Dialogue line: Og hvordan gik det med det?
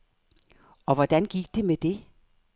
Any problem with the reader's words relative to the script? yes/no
no